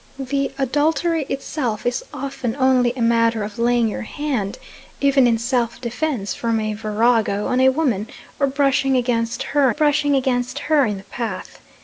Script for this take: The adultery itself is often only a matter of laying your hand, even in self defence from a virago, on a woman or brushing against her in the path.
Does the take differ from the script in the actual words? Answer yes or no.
yes